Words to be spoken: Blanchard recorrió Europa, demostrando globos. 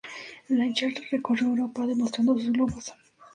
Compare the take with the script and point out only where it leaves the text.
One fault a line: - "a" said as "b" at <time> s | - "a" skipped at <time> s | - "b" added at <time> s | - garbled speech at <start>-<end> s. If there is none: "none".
- "sus" added at 2.3 s